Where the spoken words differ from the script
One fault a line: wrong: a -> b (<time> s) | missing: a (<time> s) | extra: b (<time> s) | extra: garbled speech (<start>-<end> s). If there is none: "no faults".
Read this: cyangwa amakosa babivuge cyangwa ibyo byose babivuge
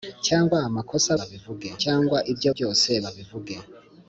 no faults